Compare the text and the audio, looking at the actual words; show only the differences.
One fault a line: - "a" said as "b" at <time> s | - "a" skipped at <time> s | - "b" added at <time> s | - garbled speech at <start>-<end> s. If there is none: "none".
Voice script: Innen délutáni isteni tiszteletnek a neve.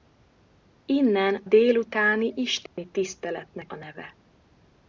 none